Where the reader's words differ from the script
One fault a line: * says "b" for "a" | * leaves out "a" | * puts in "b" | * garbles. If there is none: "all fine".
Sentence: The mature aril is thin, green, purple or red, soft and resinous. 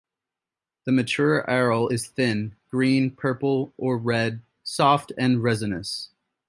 all fine